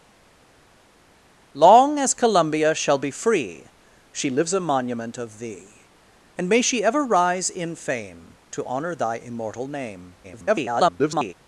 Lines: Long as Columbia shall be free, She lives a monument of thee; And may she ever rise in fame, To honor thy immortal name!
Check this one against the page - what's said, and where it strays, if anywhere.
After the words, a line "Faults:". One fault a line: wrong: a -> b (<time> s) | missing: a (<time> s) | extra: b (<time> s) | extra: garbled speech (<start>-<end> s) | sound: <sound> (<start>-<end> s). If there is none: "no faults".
Long as Columbia shall be free, She lives a monument of thee; And may she ever rise in fame, To honor thy immortal name! [garbled]
Faults:
extra: garbled speech (10.2-11.3 s)